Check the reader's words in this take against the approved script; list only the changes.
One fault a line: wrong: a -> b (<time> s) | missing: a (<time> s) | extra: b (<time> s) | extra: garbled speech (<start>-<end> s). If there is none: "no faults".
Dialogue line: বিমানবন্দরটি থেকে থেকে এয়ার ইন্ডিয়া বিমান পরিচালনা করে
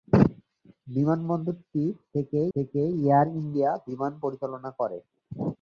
no faults